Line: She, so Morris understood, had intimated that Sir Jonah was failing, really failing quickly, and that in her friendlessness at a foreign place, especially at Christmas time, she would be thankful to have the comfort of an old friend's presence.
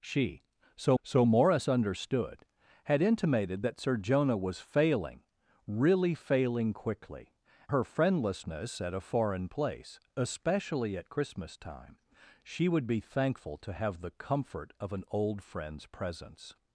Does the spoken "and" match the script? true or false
false